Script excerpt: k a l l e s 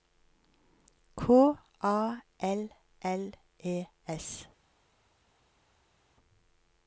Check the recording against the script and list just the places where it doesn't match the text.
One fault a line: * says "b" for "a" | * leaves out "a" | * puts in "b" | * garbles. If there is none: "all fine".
all fine